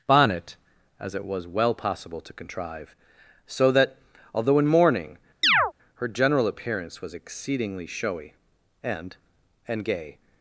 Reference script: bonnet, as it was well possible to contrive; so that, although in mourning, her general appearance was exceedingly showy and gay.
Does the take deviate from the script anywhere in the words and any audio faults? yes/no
yes